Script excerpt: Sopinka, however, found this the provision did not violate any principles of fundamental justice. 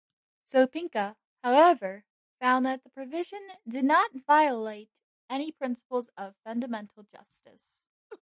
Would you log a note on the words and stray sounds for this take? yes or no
yes